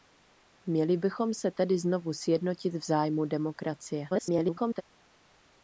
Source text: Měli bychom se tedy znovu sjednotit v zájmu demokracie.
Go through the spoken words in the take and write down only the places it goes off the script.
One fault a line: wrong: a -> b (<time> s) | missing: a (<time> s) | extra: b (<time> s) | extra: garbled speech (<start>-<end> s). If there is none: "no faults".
extra: garbled speech (4.1-4.8 s)